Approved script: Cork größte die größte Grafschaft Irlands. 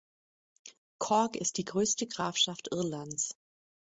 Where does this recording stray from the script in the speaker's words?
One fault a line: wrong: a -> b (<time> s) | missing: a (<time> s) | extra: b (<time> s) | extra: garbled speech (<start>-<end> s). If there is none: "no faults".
wrong: größte -> ist (1.4 s)